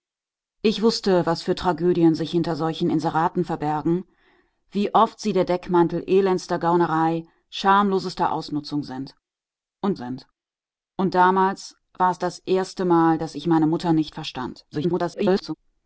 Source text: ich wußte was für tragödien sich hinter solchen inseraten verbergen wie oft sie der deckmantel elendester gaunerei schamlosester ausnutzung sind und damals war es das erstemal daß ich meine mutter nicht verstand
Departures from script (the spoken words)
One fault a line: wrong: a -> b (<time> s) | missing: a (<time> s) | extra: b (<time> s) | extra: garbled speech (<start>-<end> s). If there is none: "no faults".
extra: sind und (9.9 s)
extra: garbled speech (14.7-15.5 s)